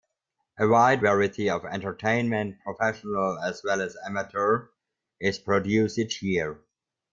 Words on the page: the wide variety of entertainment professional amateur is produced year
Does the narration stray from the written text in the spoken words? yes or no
yes